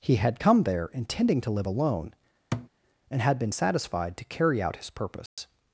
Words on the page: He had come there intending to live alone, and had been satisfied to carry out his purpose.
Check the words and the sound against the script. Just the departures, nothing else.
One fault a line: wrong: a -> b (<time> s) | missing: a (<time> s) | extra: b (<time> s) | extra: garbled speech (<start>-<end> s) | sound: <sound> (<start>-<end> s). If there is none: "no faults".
sound: thud (2.5-2.7 s)
sound: dropout (5.3-5.4 s)